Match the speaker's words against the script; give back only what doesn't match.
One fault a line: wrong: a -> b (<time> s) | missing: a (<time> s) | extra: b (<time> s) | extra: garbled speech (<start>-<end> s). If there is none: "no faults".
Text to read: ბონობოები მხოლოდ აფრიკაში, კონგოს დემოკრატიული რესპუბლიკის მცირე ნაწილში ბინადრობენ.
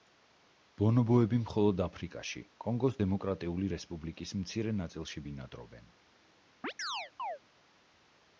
no faults